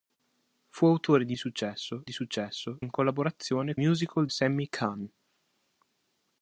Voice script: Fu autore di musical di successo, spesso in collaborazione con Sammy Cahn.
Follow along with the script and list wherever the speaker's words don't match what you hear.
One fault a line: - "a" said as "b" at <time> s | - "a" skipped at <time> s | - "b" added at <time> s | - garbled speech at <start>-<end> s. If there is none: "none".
- "musical" said as "successo" at 1.4 s
- "spesso" skipped at 2.8 s
- "con" said as "musical" at 3.8 s